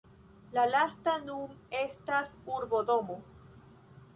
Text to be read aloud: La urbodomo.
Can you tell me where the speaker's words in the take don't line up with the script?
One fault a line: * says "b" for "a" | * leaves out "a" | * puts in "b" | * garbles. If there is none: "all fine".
* puts in "lasta nun estas"